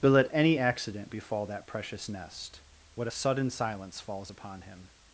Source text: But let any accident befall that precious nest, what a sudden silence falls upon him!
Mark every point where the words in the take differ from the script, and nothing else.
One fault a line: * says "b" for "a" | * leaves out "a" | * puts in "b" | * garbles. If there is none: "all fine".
all fine